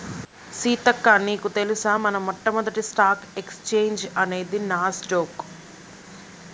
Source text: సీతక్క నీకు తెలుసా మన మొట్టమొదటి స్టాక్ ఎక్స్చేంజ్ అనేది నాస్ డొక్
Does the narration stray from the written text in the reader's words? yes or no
no